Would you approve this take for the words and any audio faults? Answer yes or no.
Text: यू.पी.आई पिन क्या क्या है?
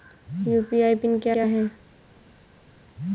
yes